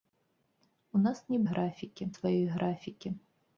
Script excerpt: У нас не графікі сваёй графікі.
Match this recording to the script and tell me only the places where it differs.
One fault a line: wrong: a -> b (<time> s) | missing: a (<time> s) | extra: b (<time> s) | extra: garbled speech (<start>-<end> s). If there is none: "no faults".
no faults